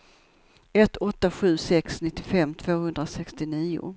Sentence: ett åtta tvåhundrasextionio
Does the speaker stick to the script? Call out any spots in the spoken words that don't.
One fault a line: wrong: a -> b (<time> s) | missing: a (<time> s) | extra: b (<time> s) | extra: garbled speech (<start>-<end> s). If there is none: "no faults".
extra: sju sex nittiofem (1.3 s)